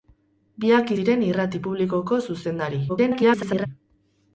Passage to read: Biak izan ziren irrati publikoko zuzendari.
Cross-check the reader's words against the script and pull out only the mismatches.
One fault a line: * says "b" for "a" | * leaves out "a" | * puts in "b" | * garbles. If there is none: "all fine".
* leaves out "izan"
* garbles